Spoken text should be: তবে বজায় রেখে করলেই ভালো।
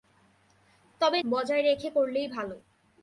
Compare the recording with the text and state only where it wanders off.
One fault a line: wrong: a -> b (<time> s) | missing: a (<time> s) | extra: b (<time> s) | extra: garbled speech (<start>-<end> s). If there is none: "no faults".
no faults